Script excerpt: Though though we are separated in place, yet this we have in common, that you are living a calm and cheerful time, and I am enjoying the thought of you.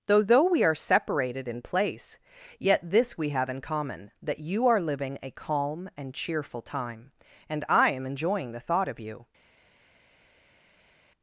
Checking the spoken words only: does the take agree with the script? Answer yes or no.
yes